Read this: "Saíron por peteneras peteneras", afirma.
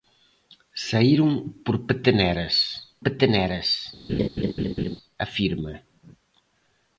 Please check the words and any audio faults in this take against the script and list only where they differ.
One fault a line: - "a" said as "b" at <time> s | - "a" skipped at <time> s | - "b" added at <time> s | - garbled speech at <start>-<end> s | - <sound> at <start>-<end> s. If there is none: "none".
- laugh at 4.1-5.0 s